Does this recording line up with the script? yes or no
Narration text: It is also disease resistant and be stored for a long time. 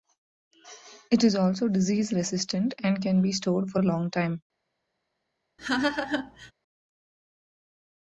no